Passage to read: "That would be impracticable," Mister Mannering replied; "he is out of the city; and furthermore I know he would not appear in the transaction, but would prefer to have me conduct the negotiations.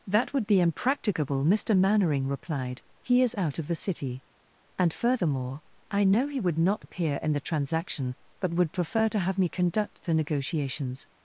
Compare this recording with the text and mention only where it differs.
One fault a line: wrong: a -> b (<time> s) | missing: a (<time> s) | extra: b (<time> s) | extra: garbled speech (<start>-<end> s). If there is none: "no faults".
no faults